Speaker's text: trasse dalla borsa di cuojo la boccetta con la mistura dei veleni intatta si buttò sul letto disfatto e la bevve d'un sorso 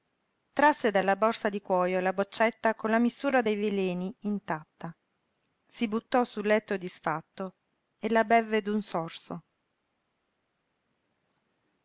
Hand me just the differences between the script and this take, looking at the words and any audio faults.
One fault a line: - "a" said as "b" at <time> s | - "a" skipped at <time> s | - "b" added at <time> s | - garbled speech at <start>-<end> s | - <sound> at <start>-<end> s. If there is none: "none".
none